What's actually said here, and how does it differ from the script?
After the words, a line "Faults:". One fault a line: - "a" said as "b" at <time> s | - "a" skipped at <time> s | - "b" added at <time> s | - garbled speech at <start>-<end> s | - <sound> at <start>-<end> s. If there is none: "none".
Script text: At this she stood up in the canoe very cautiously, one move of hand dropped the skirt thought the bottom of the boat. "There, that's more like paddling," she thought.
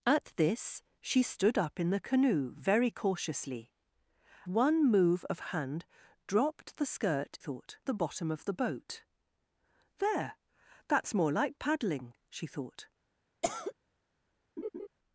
At this she stood up in the canoe very cautiously, one move of hand dropped the skirt thought the bottom of the boat. "There, that's more like paddling," she thought.
Faults:
- cough at 13.4-13.7 s
- laugh at 14.6-14.9 s